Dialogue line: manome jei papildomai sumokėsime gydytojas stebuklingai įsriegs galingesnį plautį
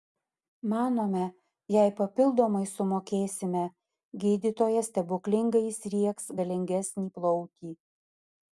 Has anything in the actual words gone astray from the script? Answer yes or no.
no